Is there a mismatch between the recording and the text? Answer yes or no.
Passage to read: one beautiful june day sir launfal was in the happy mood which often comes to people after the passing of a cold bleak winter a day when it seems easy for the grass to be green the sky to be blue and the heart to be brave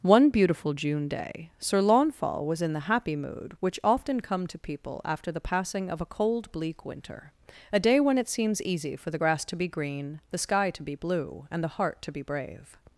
yes